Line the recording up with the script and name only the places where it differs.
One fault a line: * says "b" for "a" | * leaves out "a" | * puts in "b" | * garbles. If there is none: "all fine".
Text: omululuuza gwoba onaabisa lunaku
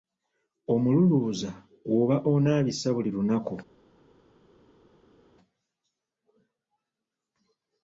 * puts in "buli"